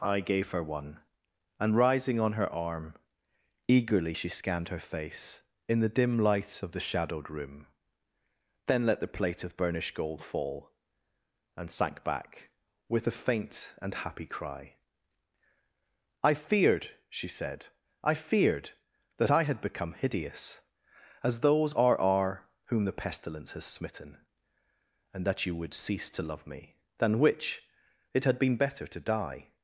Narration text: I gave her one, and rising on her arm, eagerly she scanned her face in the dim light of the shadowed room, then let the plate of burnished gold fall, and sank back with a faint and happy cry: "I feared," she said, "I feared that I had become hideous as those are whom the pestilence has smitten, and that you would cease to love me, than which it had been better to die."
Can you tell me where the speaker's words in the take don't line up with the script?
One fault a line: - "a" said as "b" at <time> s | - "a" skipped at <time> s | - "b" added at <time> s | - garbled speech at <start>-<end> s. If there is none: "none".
- "are" added at 22.0 s